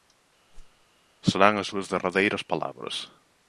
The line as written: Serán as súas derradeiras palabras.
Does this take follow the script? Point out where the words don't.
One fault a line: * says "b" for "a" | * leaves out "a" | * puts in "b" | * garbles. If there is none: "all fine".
all fine